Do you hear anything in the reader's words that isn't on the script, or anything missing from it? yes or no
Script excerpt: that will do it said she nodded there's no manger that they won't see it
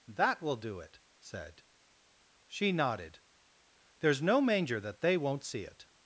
no